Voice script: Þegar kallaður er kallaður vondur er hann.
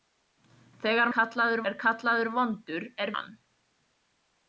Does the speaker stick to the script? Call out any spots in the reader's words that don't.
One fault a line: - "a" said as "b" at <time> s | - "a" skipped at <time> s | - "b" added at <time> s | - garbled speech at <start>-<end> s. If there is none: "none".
none